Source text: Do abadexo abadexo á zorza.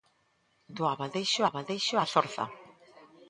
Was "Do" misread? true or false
false